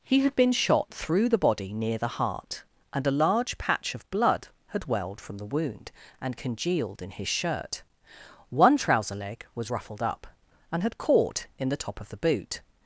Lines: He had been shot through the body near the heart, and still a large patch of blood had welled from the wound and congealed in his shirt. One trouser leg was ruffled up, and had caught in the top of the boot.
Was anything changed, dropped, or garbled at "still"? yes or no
yes